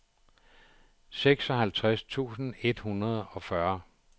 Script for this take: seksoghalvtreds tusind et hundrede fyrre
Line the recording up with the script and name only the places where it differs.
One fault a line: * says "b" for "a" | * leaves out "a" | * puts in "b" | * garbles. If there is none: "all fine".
* puts in "og"